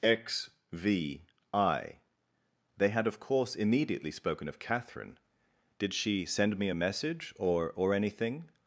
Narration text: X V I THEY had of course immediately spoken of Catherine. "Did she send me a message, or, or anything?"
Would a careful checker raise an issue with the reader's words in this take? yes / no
no